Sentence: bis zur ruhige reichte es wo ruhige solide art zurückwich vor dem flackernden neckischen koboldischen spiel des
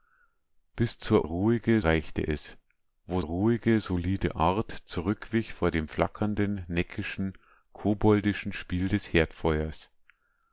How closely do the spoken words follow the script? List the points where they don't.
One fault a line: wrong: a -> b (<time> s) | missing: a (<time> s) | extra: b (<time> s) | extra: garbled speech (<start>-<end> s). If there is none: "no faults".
no faults